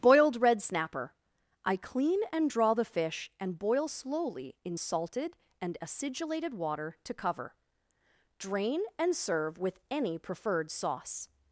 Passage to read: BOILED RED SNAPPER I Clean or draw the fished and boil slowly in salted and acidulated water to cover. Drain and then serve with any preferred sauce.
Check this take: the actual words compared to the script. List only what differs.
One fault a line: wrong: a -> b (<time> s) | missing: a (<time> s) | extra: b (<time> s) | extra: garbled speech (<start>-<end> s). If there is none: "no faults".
wrong: or -> and (2.3 s)
wrong: fished -> fish (2.9 s)
missing: then (9.2 s)